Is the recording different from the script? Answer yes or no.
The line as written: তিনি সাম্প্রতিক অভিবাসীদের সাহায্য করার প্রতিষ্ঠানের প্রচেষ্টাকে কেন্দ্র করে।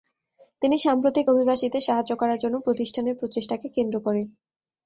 yes